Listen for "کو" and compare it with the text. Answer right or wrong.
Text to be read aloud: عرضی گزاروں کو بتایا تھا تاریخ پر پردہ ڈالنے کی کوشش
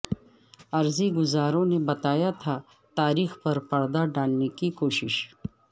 wrong